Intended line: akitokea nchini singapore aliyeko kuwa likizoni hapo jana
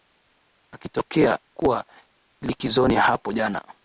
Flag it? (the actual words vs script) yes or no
yes